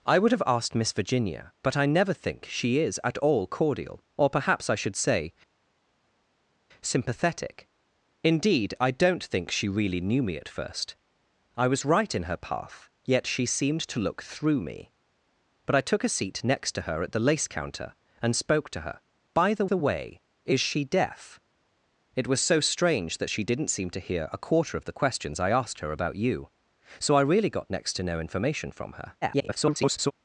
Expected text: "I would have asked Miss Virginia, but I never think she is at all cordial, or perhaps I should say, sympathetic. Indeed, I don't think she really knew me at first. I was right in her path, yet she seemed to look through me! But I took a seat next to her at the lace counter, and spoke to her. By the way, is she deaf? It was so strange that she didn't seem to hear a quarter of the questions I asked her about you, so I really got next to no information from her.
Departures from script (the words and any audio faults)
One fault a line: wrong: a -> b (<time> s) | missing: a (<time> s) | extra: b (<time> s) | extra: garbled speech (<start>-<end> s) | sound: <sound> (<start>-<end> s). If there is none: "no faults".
extra: the (19.6 s)
extra: garbled speech (29.2-30.1 s)